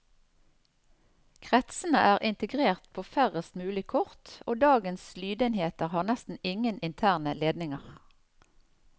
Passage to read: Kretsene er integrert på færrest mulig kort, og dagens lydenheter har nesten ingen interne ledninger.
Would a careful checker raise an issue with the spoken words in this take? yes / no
no